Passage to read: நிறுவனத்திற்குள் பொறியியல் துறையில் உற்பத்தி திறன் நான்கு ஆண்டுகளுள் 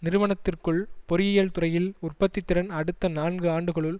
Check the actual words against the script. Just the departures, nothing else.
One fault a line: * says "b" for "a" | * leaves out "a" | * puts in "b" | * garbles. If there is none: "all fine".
* puts in "அடுத்த"